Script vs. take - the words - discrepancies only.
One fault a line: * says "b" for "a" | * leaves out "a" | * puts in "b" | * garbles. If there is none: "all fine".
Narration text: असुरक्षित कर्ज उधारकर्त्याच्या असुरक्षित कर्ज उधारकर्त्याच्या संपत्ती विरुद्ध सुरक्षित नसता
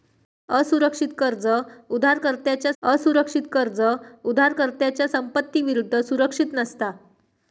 all fine